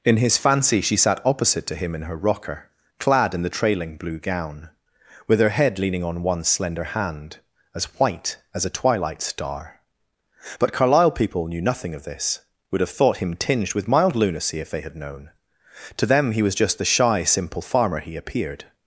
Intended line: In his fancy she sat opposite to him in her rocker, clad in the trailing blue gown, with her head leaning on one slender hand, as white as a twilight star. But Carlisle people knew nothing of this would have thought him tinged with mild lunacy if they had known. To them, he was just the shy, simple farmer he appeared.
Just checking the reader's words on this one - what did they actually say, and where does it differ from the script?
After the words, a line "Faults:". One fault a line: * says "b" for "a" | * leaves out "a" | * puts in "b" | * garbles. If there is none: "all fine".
In his fancy she sat opposite to him in her rocker, clad in the trailing blue gown, with her head leaning on one slender hand, as white as a twilight star. But Carlisle people knew nothing of this would have thought him tinged with mild lunacy if they had known. To them, he was just the shy, simple farmer he appeared.
Faults:
all fine